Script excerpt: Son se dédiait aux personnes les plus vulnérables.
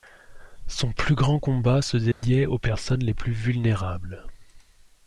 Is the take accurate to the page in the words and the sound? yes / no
no